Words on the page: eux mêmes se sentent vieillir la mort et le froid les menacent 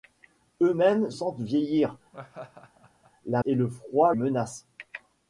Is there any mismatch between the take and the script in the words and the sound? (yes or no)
yes